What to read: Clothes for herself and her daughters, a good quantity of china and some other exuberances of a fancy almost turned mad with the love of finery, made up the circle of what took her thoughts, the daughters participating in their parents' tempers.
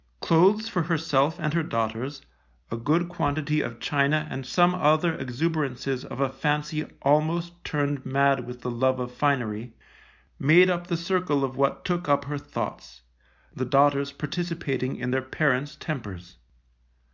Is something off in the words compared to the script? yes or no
yes